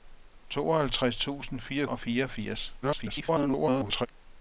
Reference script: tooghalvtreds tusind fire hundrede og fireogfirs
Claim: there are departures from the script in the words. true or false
true